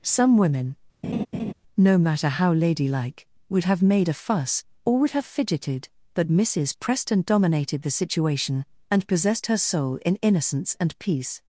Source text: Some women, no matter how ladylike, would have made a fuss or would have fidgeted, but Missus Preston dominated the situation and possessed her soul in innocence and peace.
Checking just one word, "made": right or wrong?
right